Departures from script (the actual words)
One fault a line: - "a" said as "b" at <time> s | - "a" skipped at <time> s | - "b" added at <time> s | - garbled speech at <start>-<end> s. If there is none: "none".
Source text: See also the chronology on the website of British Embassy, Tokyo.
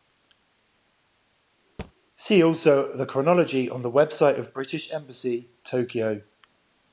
none